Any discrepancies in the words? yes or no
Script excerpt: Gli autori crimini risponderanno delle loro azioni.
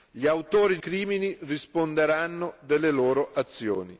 no